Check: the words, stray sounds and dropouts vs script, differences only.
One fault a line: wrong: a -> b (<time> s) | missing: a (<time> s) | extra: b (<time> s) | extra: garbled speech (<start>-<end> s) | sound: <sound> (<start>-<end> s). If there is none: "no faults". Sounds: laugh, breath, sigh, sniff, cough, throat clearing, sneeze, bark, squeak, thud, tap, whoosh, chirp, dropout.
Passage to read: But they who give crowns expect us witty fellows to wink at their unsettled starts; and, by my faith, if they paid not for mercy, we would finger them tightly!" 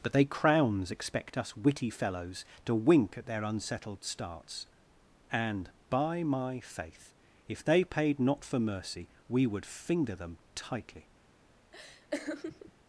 missing: who give (0.2 s)
sound: laugh (11.7-12.7 s)